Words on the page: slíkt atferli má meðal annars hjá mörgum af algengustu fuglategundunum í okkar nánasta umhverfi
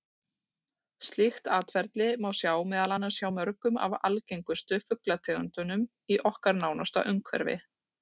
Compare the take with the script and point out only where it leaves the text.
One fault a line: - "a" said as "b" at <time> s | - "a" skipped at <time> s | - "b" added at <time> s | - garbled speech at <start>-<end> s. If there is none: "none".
- "sjá" added at 2.4 s